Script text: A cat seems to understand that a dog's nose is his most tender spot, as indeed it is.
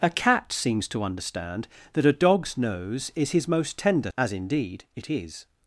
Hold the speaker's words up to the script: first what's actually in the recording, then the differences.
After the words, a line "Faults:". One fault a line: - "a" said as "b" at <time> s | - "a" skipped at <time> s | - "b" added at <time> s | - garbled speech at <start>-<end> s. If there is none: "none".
A cat seems to understand that a dog's nose is his most tender as indeed it is.
Faults:
- "spot" skipped at 4.1 s